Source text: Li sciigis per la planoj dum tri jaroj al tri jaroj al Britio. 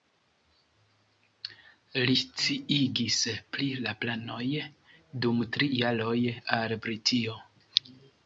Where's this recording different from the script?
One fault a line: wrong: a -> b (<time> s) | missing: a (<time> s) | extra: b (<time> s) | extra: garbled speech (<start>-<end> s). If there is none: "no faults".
wrong: per -> pri (3.6 s)
missing: tri jaroj al (6.8 s)